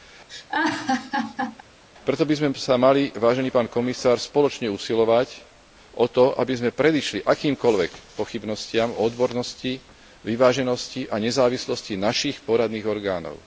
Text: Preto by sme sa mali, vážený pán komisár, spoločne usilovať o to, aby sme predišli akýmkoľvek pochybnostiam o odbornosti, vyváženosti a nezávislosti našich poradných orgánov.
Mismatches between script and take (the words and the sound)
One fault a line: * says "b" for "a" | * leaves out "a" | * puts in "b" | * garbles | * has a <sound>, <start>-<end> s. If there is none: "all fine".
* has a laugh, 0.3-1.6 s